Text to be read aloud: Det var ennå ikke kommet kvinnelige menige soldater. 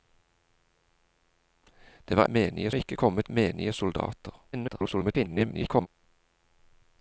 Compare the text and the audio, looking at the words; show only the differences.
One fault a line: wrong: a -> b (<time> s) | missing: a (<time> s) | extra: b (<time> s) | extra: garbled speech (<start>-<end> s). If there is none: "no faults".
wrong: ennå -> menige (2.2 s)
missing: kvinnelige (3.3 s)
extra: garbled speech (4.5-5.9 s)